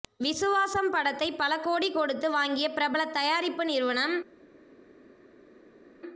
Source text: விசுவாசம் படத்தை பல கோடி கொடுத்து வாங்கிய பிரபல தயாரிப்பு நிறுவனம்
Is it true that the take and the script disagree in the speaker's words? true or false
false